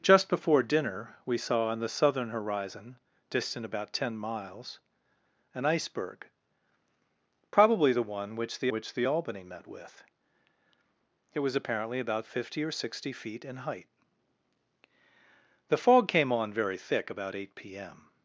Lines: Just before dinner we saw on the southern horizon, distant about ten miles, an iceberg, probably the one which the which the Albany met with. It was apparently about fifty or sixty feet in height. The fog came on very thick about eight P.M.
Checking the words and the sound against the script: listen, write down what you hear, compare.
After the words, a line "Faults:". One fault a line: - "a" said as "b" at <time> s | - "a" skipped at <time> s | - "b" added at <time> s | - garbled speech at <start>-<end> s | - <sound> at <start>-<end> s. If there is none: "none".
Just before dinner we saw on the southern horizon, distant about ten miles, an iceberg, probably the one which the which the Albany met with. It was apparently about fifty or sixty feet in height. The fog came on very thick about eight P.M.
Faults:
none